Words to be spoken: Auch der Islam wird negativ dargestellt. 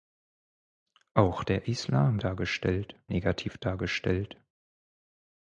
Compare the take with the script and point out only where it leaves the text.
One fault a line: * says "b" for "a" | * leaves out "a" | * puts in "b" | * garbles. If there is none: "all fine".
* says "dargestellt" for "wird"